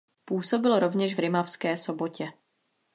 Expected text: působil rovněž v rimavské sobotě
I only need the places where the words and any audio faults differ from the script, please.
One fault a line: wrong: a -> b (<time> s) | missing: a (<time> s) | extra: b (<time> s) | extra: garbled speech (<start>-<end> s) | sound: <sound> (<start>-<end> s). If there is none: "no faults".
no faults